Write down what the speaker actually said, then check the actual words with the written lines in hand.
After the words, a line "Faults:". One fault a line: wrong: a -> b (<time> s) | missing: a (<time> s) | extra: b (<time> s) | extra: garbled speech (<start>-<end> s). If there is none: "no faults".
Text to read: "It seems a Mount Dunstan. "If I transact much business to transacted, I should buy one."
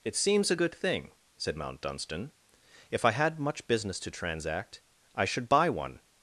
"It seems a good thing," said Mount Dunstan. "If I had much business to transact, I should buy one."
Faults:
extra: good thing said (0.5 s)
wrong: transact -> had (3.1 s)
wrong: transacted -> transact (4.1 s)